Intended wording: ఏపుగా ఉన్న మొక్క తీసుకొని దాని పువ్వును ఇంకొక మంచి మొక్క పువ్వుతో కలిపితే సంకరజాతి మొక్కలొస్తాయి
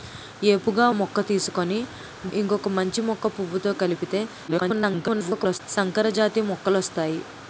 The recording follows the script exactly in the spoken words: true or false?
false